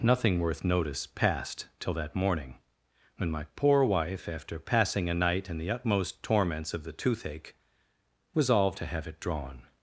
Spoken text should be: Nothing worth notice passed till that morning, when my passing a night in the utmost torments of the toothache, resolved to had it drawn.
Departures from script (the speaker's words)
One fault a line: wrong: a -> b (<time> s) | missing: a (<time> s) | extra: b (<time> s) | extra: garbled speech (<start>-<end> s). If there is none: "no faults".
extra: poor wife after (3.5 s)
wrong: had -> have (8.8 s)